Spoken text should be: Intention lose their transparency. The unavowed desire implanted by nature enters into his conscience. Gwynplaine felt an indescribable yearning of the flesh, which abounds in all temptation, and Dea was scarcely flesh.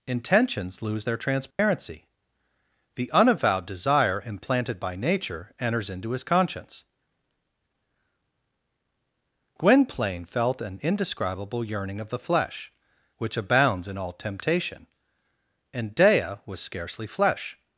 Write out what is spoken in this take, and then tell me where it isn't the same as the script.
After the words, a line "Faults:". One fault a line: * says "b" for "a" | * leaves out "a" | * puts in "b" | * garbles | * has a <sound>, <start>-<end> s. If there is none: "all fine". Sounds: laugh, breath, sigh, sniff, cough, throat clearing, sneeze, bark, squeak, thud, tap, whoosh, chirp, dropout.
Intentions lose their transparency. The unavowed desire implanted by nature enters into his conscience. Gwynplaine felt an indescribable yearning of the flesh, which abounds in all temptation, and Dea was scarcely flesh.
Faults:
* says "Intentions" for "Intention"
* has a dropout, 1.5-1.6 s